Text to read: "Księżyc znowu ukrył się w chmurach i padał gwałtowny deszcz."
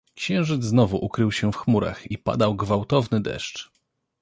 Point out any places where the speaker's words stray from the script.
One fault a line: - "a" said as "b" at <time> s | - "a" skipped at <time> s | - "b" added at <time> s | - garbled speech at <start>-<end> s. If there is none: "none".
none